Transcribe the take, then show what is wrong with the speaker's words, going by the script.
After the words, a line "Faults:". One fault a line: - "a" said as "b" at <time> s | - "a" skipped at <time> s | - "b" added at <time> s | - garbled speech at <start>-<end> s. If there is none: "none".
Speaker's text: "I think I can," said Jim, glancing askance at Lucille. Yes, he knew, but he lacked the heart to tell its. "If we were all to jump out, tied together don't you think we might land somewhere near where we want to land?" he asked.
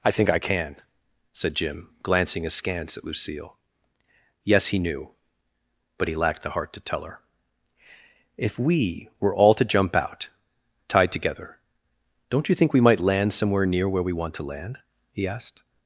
"I think I can," said Jim, glancing askance at Lucille. Yes, he knew, but he lacked the heart to tell her. "If we were all to jump out, tied together don't you think we might land somewhere near where we want to land?" he asked.
Faults:
- "its" said as "her" at 7.0 s